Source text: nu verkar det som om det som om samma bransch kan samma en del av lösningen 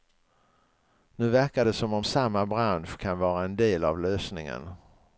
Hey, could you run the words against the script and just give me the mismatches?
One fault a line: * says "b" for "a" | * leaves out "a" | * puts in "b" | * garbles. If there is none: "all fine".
* leaves out "det som om"
* says "vara" for "samma"